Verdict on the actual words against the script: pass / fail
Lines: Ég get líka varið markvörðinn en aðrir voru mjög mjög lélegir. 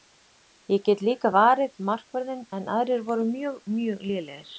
pass